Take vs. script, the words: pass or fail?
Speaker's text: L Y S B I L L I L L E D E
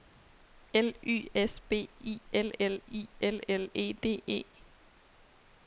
pass